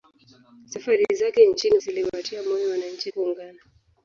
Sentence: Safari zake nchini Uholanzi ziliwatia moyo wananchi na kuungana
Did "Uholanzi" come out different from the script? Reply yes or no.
yes